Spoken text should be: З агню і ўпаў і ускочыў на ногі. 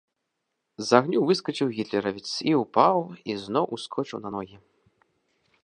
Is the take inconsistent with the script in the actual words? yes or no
yes